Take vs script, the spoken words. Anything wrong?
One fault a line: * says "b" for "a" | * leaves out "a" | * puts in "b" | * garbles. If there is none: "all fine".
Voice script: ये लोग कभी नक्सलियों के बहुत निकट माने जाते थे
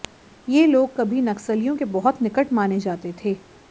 all fine